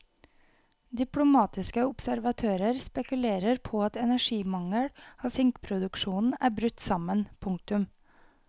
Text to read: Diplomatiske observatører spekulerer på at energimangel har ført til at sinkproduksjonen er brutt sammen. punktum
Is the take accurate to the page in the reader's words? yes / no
no